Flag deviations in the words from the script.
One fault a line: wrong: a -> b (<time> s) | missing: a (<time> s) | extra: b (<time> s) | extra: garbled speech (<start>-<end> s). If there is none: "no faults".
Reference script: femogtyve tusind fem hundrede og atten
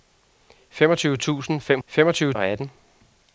wrong: hundrede -> femogtyve (1.9 s)